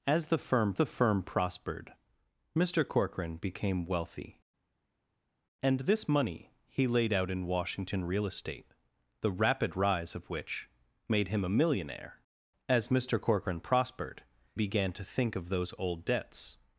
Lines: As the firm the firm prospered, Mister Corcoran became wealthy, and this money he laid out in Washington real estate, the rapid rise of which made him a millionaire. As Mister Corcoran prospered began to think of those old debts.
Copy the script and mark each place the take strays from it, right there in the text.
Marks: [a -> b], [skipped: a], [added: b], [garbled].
As the firm the firm prospered, Mister Corcoran became wealthy, and this money he laid out in Washington real estate, the rapid rise of which made him a millionaire. As Mister Corcoran prospered began to think of those old debts.